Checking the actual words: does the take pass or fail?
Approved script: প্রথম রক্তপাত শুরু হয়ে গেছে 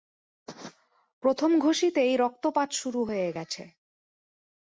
fail